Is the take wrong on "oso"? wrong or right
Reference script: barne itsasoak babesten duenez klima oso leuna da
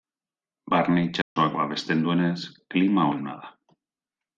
wrong